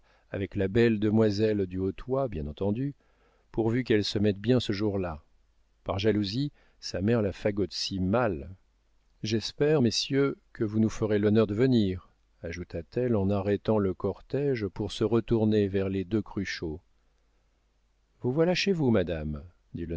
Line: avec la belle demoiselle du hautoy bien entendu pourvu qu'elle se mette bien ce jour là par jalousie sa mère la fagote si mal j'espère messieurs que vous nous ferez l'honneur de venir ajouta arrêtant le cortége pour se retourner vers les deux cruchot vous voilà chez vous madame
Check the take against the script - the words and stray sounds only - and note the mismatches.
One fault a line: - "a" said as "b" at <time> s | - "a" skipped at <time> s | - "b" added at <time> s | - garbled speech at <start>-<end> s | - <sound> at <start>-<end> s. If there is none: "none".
- "t elle en" added at 12.8 s